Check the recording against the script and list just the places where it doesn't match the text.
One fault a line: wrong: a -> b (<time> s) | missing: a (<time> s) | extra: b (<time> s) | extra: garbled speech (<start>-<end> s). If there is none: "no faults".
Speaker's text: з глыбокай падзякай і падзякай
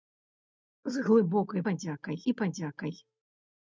no faults